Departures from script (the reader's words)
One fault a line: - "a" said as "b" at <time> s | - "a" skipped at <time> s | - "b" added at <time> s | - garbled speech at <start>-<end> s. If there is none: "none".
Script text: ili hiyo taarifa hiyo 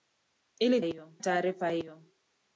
none